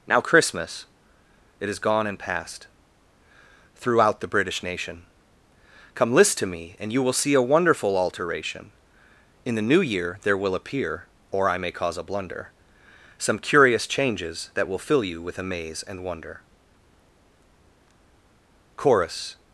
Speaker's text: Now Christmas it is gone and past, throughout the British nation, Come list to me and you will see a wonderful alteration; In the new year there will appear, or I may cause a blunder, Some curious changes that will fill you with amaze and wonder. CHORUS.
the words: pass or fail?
pass